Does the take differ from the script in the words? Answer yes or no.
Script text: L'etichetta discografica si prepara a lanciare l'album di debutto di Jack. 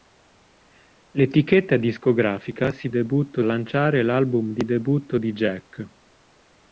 yes